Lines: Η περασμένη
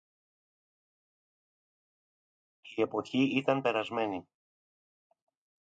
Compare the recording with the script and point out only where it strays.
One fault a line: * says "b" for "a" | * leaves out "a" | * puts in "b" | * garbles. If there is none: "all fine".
* puts in "εποχή ήταν"